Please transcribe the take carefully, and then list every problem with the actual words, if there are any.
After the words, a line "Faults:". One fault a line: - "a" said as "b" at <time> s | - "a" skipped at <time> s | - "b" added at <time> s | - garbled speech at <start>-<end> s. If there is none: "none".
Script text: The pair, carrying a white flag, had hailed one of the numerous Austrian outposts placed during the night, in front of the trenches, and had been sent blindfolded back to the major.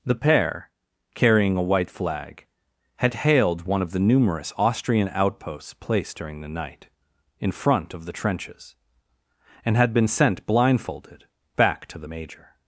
The pair, carrying a white flag, had hailed one of the numerous Austrian outposts placed during the night, in front of the trenches, and had been sent blindfolded back to the major.
Faults:
none